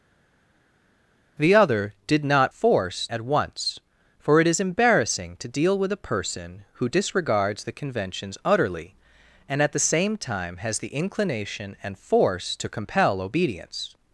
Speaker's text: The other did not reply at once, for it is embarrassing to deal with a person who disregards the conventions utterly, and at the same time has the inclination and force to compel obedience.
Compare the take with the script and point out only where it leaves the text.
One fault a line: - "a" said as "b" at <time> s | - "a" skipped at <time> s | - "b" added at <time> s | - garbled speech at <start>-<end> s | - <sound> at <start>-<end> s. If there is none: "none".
- "reply" said as "force" at 2.5 s